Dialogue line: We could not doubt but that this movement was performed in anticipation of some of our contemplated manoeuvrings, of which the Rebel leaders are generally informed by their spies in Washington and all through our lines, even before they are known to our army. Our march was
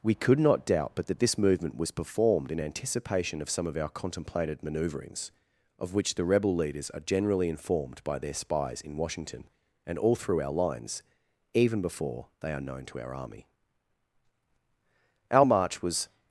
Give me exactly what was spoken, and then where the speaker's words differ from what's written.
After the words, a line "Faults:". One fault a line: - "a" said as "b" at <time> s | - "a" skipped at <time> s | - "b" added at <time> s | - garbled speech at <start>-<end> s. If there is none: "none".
We could not doubt but that this movement was performed in anticipation of some of our contemplated manoeuvrings, of which the Rebel leaders are generally informed by their spies in Washington and all through our lines, even before they are known to our army. Our march was
Faults:
none